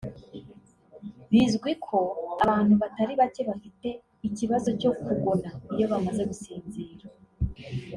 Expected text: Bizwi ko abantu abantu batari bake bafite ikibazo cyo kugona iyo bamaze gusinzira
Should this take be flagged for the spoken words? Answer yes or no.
yes